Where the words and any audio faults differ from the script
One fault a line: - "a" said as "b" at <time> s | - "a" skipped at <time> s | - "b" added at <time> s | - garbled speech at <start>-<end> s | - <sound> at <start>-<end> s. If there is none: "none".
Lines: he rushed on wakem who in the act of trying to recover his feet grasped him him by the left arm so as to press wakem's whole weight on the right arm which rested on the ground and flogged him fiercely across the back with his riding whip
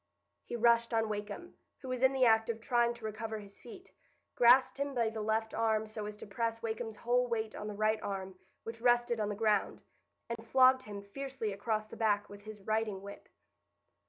- "was" added at 1.9 s
- "him" skipped at 4.9 s
- dropout at 10.4-10.4 s